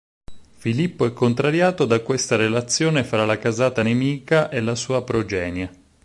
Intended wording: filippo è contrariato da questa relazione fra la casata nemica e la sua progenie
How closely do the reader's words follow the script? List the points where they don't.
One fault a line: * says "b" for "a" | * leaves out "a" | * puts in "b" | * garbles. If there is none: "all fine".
all fine